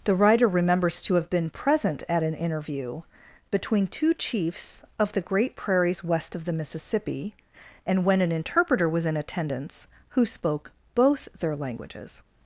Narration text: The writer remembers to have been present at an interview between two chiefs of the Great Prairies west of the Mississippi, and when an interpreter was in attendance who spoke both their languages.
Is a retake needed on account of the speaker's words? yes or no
no